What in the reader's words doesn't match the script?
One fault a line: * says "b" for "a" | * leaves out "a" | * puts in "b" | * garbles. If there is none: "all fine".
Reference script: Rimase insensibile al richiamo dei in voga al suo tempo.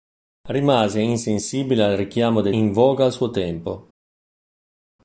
all fine